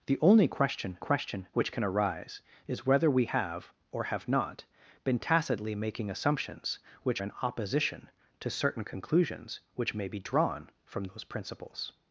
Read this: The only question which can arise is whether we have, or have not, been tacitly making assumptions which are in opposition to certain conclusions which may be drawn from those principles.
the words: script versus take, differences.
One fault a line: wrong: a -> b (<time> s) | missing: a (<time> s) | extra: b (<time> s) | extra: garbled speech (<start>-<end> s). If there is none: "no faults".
extra: question (1.0 s)
missing: are (7.2 s)